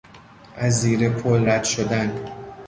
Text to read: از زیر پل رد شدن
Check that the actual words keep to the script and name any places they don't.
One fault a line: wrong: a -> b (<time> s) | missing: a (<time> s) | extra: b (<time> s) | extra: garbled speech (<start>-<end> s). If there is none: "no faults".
no faults